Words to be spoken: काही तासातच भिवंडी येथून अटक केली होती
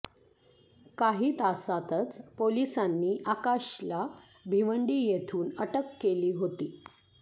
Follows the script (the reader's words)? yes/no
no